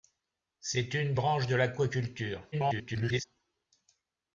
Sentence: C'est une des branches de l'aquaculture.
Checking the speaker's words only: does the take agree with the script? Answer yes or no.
no